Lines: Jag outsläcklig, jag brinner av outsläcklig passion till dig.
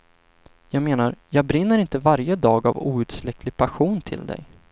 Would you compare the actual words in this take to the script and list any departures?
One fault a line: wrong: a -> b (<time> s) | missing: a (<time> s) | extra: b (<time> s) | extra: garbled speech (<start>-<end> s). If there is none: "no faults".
wrong: outsläcklig -> menar (0.8 s)
extra: inte varje dag (1.8 s)